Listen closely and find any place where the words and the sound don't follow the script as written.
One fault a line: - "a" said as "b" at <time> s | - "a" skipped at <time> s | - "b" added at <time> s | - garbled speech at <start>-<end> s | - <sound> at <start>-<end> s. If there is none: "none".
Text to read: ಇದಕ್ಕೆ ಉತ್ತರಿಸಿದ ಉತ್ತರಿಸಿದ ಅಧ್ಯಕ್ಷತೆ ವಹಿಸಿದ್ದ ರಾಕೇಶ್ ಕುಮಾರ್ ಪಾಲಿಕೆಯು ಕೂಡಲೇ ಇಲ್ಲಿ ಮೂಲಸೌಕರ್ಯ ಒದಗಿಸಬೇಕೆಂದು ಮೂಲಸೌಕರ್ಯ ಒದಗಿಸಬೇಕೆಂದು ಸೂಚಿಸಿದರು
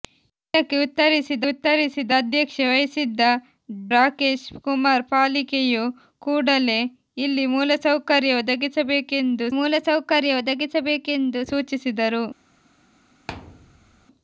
- thud at 13.3-14.1 s